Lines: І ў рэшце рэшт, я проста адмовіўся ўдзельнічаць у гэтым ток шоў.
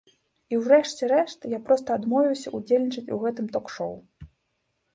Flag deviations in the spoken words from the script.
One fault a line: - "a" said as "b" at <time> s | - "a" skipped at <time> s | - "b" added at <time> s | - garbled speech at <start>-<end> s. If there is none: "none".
none